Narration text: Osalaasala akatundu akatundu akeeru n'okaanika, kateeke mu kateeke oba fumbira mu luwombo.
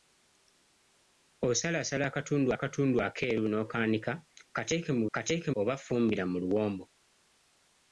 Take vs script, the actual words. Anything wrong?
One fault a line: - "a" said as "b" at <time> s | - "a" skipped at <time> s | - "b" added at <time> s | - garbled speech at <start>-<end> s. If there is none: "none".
none